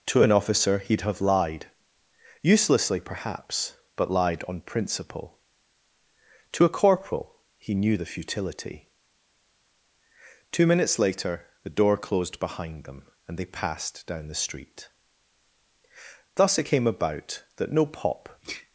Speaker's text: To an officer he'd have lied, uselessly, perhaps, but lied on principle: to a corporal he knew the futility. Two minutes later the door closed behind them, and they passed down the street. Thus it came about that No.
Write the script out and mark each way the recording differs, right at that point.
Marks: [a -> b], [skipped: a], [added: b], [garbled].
To an officer he'd have lied, uselessly, perhaps, but lied on principle: to a corporal he knew the futility. Two minutes later the door closed behind them, and they passed down the street. Thus it came about that No. [added: pop]